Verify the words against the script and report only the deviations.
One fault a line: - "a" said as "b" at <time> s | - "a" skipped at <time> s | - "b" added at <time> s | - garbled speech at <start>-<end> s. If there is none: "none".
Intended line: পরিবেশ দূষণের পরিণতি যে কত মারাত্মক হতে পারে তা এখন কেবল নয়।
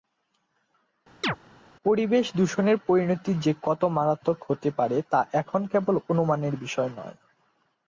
- "অনুমানের বিষয়" added at 6.1 s